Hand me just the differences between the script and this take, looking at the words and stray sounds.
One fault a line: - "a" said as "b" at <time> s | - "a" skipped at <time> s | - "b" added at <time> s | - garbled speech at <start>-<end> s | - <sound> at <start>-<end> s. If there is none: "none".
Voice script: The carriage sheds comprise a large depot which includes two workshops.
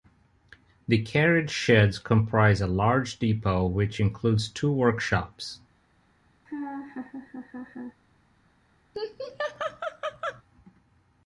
- laugh at 6.4-8.0 s
- laugh at 8.9-10.4 s